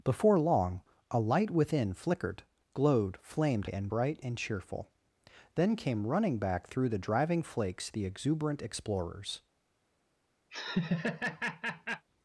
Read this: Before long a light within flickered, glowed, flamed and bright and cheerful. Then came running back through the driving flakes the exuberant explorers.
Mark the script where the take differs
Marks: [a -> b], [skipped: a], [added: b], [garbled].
Before long a light within flickered, glowed, flamed and bright and cheerful. Then came running back through the driving flakes the exuberant explorers.